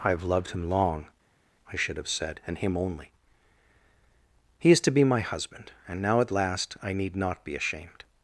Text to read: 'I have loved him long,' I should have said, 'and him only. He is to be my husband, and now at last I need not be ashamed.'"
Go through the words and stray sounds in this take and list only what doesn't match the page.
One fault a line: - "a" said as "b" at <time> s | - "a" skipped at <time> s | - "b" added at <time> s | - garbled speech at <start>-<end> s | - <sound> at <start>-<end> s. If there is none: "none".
none